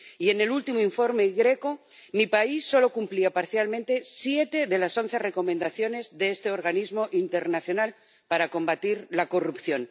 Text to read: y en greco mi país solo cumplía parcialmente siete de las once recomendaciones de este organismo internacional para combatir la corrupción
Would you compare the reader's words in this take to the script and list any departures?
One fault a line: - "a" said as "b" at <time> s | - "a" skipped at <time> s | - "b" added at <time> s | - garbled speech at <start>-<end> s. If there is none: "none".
- "el último informe" added at 0.4 s